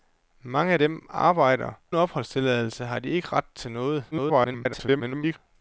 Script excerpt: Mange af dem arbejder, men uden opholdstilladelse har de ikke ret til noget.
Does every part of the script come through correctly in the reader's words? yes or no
no